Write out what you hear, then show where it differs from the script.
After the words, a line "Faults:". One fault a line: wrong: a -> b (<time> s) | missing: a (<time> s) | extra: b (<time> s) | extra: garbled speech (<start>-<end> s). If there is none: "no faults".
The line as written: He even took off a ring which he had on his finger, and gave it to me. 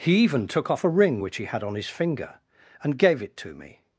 He even took off a ring which he had on his finger, and gave it to me.
Faults:
no faults